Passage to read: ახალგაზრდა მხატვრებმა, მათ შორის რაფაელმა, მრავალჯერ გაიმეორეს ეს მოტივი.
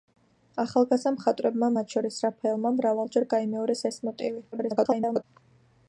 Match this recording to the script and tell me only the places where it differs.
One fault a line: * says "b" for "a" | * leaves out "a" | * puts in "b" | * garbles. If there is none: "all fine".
* garbles